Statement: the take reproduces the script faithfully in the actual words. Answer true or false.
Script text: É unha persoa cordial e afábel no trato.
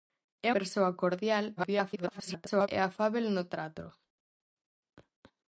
false